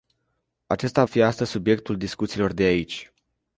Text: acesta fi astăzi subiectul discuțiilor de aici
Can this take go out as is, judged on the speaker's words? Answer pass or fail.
pass